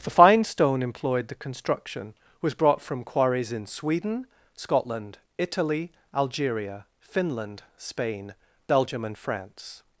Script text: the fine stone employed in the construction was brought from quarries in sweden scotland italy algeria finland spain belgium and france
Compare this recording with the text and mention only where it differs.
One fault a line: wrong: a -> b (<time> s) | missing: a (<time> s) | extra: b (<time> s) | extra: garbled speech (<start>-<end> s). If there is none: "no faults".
missing: in (1.3 s)